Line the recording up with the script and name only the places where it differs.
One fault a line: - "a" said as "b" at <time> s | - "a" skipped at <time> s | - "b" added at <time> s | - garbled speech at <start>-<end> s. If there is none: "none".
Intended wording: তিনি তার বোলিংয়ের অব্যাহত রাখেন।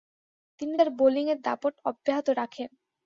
- "দাপট" added at 1.4 s